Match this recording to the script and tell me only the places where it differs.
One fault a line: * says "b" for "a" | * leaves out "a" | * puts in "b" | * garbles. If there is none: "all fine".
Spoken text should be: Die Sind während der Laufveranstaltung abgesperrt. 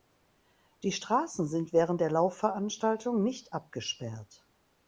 * puts in "Straßen"
* puts in "nicht"